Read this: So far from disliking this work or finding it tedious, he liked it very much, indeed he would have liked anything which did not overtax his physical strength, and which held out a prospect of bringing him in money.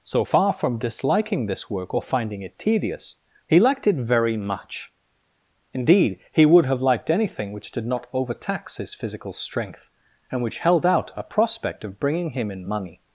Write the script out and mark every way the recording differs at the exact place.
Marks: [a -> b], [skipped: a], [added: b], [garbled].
So far from disliking this work or finding it tedious, he liked it very much, indeed he would have liked anything which did not overtax his physical strength, and which held out a prospect of bringing him in money.